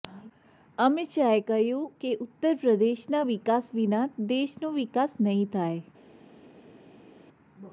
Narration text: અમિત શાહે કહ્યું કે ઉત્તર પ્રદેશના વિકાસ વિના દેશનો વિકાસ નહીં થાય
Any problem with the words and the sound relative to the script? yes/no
no